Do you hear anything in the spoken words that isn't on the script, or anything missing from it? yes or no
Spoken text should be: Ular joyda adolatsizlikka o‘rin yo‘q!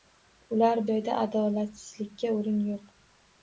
no